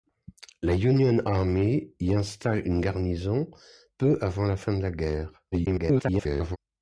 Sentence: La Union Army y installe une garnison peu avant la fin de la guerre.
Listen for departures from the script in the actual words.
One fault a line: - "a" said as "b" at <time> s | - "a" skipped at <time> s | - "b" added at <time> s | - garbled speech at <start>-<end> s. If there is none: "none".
- garbled speech at 5.5-6.6 s